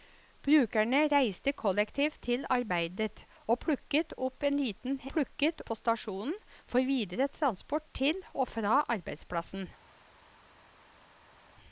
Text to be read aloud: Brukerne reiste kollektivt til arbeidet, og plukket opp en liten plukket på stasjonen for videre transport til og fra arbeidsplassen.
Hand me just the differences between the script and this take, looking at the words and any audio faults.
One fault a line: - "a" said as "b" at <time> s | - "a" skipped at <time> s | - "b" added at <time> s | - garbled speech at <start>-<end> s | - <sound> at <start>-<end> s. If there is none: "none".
none